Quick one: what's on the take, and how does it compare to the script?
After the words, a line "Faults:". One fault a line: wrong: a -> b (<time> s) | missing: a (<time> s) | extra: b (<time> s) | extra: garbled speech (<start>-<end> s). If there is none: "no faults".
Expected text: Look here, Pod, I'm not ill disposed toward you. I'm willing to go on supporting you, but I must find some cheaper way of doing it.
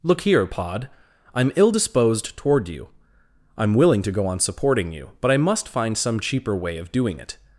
Look here, Pod, I'm ill disposed toward you. I'm willing to go on supporting you, but I must find some cheaper way of doing it.
Faults:
missing: not (1.5 s)